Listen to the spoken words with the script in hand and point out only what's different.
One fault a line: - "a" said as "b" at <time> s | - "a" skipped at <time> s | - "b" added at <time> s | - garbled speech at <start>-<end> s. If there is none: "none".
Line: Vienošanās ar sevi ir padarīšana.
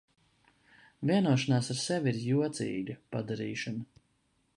- "jocīga" added at 2.3 s